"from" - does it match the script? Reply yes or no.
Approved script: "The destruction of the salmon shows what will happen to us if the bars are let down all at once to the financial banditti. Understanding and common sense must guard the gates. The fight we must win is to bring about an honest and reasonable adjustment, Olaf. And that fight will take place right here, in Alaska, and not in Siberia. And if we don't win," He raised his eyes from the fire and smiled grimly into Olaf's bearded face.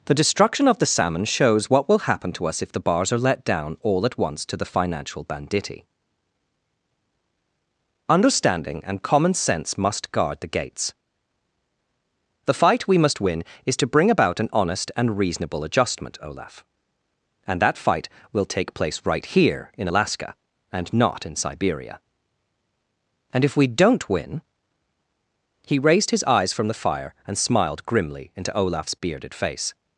yes